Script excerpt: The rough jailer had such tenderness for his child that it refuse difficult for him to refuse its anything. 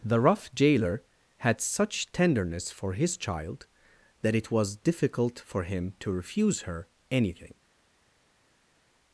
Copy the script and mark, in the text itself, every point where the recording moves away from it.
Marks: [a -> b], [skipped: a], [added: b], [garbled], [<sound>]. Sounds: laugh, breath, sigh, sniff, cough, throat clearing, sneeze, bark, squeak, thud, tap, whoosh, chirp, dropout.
The rough jailer had such tenderness for his child that it [refuse -> was] difficult for him to refuse [its -> her] anything.